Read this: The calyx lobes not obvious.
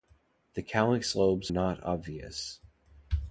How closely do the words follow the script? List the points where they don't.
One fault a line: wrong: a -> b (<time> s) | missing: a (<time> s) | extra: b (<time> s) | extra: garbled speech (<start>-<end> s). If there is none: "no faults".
no faults